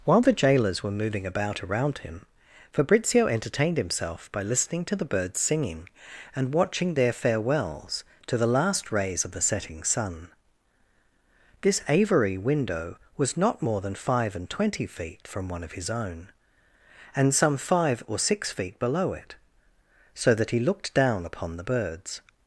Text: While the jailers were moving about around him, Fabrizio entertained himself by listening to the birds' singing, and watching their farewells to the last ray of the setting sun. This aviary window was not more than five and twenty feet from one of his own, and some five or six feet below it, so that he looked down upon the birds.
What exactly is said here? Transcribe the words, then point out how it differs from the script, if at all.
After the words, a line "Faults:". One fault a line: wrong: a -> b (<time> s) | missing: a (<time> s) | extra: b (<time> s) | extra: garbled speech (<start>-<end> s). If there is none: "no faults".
While the jailers were moving about around him, Fabrizio entertained himself by listening to the birds' singing, and watching their farewells to the last rays of the setting sun. This aviary window was not more than five and twenty feet from one of his own, and some five or six feet below it, so that he looked down upon the birds.
Faults:
wrong: ray -> rays (8.9 s)